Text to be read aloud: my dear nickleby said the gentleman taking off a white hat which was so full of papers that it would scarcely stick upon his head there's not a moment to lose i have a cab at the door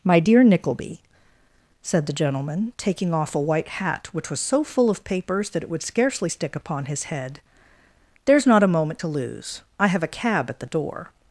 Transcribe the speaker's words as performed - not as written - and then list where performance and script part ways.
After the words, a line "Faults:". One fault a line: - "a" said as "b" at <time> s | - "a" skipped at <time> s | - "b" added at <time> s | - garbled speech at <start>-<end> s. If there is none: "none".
my dear nickleby said the gentleman taking off a white hat which was so full of papers that it would scarcely stick upon his head there's not a moment to lose i have a cab at the door
Faults:
none